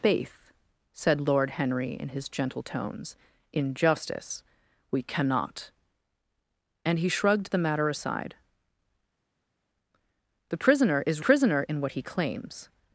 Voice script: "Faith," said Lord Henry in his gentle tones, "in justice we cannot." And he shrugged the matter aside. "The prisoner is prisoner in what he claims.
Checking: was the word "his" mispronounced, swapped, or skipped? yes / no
no